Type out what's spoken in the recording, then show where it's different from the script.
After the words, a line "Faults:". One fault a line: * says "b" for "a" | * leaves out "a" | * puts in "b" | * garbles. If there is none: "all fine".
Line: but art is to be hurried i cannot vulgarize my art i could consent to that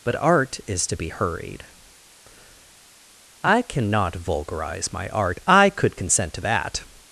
but art is to be hurried i cannot vulgarize my art i could consent to that
Faults:
all fine